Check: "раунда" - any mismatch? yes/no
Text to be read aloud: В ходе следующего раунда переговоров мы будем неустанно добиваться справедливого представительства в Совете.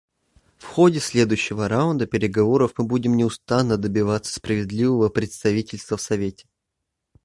no